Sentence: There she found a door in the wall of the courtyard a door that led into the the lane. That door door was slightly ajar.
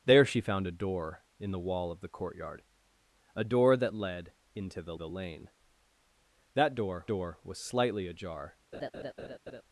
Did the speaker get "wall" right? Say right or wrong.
right